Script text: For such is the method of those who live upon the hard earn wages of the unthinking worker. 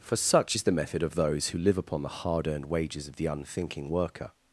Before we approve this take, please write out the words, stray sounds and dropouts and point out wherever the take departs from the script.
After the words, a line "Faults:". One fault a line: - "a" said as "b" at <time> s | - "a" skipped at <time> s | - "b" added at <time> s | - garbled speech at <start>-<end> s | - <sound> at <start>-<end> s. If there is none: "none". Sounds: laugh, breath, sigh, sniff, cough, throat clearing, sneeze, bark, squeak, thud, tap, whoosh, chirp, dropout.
For such is the method of those who live upon the hard earned wages of the unthinking worker.
Faults:
- "earn" said as "earned" at 2.5 s